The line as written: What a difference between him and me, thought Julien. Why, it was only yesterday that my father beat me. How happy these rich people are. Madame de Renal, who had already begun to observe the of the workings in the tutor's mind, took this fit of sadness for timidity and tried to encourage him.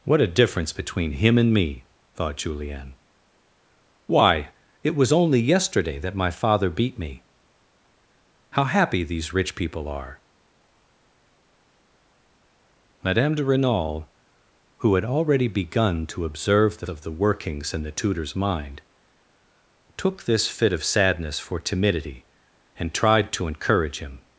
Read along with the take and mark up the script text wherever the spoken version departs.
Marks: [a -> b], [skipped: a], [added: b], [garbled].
What a difference between him and me, thought Julien. Why, it was only yesterday that my father beat me. How happy these rich people are. Madame de Renal, who had already begun to observe the of the workings in the tutor's mind, took this fit of sadness for timidity and tried to encourage him.